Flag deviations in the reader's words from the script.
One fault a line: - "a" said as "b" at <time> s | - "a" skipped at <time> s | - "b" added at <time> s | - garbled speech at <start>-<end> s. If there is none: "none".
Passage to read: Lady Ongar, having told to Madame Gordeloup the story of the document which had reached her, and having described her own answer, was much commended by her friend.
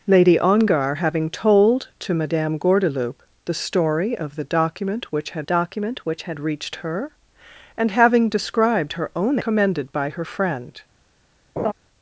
- "document which had" added at 5.4 s
- "answer was much" skipped at 9.4 s